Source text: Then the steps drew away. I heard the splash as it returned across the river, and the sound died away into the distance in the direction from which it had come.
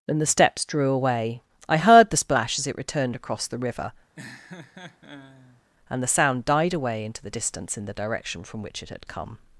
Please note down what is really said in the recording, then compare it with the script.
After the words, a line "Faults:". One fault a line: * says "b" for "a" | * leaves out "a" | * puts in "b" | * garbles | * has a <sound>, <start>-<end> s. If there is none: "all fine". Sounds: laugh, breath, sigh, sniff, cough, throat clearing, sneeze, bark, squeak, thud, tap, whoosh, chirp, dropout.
And the steps drew away. I heard the splash as it returned across the river, and the sound died away into the distance in the direction from which it had come.
Faults:
* says "And" for "Then"
* has a laugh, 4.2-5.6 s